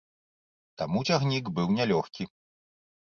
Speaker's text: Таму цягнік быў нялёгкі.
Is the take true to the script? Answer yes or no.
yes